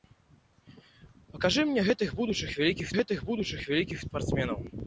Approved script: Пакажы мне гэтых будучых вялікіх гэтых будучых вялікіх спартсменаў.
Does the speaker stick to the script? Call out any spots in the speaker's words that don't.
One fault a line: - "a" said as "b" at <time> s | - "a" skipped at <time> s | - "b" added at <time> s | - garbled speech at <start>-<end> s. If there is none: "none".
none